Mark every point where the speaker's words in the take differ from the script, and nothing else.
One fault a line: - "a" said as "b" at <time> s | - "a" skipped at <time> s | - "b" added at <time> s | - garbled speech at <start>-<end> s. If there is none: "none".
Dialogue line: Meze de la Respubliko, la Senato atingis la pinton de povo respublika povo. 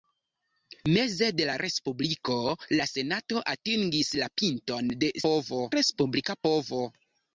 none